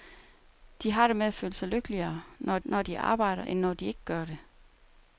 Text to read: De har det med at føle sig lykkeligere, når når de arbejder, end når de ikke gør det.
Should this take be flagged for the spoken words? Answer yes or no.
no